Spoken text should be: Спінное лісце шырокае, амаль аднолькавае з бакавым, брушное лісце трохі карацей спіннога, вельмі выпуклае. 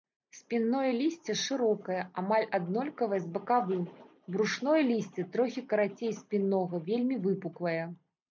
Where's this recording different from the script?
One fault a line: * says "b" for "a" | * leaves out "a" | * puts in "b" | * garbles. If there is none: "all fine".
all fine